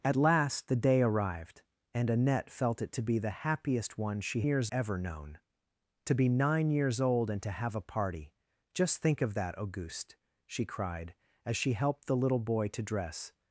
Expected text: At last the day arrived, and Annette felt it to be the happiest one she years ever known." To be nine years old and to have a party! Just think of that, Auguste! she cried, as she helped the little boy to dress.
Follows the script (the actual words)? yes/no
yes